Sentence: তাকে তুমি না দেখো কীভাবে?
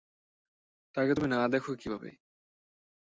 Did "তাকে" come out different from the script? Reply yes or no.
no